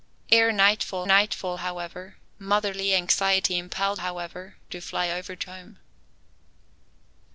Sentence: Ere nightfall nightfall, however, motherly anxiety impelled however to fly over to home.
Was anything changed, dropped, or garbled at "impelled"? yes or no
no